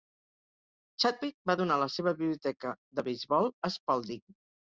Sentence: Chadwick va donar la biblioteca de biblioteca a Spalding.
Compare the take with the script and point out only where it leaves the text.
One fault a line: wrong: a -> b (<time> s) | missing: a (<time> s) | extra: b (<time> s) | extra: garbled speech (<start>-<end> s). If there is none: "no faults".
extra: seva (2.0 s)
wrong: biblioteca -> beisbol (3.1 s)